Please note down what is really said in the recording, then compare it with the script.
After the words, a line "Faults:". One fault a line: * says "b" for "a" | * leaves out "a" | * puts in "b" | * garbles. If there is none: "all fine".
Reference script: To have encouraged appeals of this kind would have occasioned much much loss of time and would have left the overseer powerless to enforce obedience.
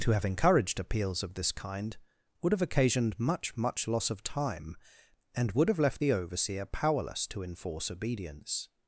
To have encouraged appeals of this kind would have occasioned much much loss of time and would have left the overseer powerless to enforce obedience.
Faults:
all fine